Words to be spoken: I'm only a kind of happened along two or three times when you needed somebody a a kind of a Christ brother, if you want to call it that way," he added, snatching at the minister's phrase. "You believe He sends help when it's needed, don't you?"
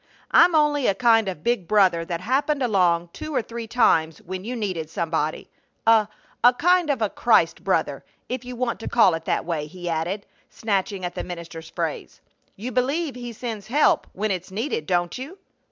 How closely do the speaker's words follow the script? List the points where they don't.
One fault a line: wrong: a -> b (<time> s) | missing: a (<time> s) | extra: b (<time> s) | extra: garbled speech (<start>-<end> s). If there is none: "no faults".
extra: big brother that (1.4 s)